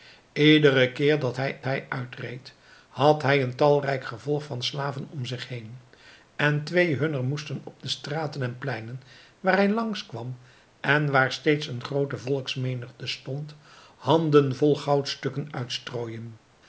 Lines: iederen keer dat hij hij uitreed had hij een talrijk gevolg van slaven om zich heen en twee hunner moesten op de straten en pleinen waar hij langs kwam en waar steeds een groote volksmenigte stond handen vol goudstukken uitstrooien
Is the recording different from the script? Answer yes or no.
no